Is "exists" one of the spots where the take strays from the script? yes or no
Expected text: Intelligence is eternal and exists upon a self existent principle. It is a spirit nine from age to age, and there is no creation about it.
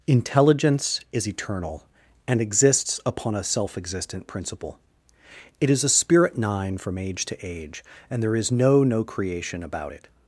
no